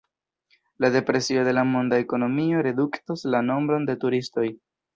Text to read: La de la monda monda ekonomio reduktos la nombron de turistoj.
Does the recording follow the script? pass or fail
fail